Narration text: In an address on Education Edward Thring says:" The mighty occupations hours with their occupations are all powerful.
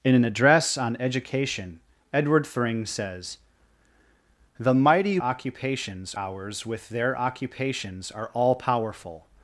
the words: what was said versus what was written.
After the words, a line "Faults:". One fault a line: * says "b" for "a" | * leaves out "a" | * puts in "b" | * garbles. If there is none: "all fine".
In an address on Education Edward Thring says:" The mighty occupations hours with their occupations are all powerful.
Faults:
all fine